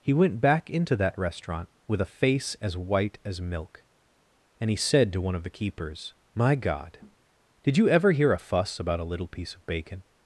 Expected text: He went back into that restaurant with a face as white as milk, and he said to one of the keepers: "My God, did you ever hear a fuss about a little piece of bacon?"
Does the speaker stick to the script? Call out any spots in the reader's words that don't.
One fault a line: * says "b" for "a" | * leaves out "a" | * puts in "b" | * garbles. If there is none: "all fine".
all fine